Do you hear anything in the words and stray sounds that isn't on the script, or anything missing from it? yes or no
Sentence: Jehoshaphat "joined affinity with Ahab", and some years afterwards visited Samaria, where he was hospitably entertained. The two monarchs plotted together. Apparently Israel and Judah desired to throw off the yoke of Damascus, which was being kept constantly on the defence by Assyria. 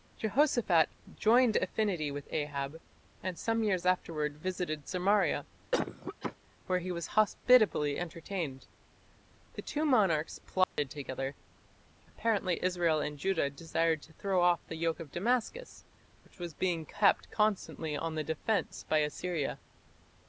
yes